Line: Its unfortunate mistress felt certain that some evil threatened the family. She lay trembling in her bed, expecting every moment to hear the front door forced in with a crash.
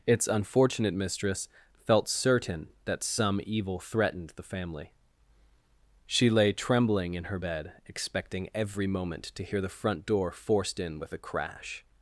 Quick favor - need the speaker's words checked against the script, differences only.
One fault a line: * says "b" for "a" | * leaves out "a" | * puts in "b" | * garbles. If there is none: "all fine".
all fine